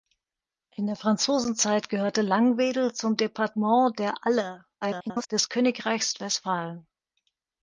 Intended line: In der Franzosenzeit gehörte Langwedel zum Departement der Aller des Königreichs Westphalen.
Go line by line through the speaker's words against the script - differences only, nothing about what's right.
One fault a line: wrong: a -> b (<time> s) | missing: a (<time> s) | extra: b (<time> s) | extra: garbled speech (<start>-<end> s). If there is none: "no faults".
extra: garbled speech (4.8-5.3 s)